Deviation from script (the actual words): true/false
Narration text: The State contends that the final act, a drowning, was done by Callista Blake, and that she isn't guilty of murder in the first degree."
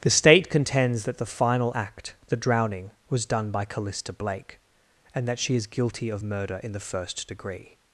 true